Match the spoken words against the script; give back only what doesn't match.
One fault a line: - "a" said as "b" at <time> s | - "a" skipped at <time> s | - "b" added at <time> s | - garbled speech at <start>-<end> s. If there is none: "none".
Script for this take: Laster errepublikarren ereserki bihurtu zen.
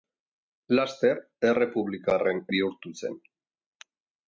- "ereserki" skipped at 2.4 s